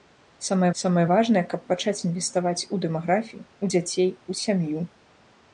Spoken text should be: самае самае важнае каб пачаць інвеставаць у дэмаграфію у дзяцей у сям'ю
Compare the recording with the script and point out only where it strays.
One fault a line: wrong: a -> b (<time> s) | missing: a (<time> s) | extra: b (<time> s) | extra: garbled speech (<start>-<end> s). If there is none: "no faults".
no faults